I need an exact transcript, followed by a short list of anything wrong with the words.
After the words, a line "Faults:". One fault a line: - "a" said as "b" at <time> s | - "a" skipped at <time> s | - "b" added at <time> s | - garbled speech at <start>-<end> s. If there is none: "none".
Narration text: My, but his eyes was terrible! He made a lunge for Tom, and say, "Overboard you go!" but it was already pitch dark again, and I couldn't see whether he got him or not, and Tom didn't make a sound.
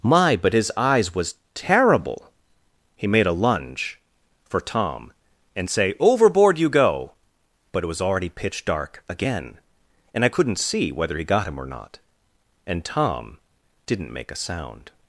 My, but his eyes was terrible! He made a lunge for Tom, and say, "Overboard you go!" but it was already pitch dark again, and I couldn't see whether he got him or not, and Tom didn't make a sound.
Faults:
none